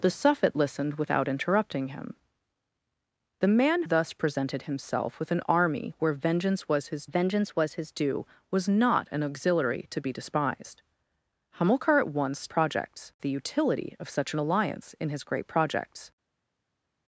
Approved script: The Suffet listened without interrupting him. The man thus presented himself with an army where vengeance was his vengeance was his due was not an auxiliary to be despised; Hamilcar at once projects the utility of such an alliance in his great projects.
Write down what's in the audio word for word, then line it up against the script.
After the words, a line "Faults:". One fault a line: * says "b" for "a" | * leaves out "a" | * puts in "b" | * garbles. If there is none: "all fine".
The Suffet listened without interrupting him. The man thus presented himself with an army where vengeance was his vengeance was his due was not an auxiliary to be despised; Hamilcar at once projects the utility of such an alliance in his great projects.
Faults:
all fine